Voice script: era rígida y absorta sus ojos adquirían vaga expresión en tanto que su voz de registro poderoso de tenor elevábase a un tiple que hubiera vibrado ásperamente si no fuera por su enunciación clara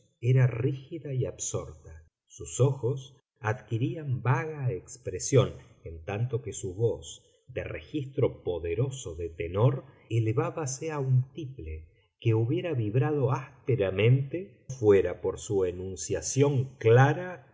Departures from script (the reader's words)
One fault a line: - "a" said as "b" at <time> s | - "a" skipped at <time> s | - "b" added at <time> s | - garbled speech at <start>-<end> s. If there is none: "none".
- "si no" skipped at 14.7 s